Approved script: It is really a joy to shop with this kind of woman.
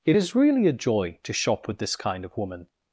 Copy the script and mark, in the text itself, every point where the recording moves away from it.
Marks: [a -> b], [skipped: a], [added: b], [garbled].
It is really a joy to shop with this kind of woman.